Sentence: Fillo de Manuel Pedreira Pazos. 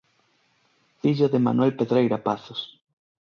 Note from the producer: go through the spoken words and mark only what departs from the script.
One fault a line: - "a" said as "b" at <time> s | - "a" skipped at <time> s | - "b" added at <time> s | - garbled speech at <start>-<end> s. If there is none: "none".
none